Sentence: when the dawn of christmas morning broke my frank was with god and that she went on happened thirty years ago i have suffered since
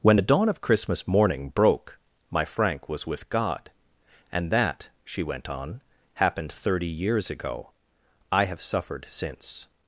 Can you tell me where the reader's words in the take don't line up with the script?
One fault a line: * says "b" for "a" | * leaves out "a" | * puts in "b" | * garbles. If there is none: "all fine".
all fine